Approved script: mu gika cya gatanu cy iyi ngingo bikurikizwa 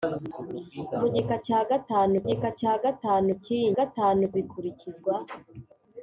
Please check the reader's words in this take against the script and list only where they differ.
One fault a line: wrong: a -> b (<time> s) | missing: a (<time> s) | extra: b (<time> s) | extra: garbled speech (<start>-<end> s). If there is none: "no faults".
extra: gika cya gatanu (2.3 s)
wrong: ngingo -> gatanu (3.8 s)